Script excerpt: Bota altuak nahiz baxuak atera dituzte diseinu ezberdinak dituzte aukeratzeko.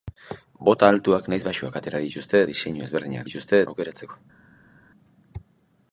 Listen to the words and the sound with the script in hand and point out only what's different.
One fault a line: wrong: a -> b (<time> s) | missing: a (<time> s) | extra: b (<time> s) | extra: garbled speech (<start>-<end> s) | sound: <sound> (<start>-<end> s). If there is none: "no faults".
no faults